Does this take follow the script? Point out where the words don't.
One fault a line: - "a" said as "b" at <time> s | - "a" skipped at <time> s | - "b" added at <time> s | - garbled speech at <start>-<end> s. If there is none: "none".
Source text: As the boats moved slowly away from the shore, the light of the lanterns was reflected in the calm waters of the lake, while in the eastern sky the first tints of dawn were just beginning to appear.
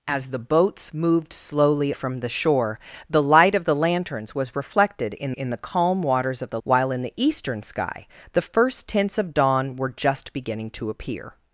- "away" skipped at 1.9 s
- "in" added at 5.3 s
- "lake" skipped at 6.6 s